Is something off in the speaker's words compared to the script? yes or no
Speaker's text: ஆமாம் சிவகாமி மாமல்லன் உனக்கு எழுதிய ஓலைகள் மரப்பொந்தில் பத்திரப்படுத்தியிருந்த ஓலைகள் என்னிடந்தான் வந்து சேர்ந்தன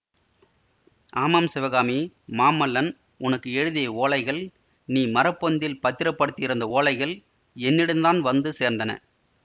yes